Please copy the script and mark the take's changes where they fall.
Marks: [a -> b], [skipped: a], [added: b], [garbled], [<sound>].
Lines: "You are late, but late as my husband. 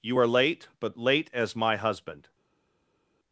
"You are late, but late as my husband.